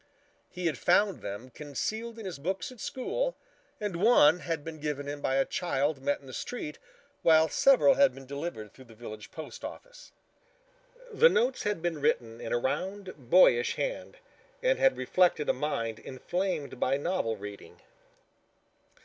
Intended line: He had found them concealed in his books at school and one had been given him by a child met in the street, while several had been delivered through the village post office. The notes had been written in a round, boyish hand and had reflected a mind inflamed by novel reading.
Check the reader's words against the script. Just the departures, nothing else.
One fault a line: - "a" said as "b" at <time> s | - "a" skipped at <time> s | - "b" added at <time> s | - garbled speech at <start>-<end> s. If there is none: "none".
none